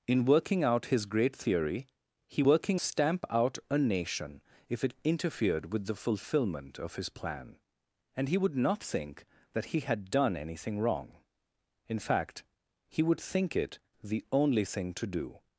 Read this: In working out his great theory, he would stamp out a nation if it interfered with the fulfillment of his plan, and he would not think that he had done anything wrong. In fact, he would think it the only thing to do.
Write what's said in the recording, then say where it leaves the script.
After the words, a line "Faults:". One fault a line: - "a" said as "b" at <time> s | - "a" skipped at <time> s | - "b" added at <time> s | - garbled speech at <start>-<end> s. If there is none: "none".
In working out his great theory, he working stamp out a nation if it interfered with the fulfillment of his plan, and he would not think that he had done anything wrong. In fact, he would think it the only thing to do.
Faults:
- "would" said as "working" at 2.4 s